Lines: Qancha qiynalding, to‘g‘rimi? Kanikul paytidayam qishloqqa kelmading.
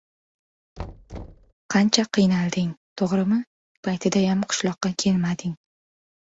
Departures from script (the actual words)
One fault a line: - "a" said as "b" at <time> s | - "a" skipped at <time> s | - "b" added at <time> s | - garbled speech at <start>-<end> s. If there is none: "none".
- "Kanikul" skipped at 3.4 s